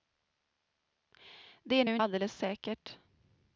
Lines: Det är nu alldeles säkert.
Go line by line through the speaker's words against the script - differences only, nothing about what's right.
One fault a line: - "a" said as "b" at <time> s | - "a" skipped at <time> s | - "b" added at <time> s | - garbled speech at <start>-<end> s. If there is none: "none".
none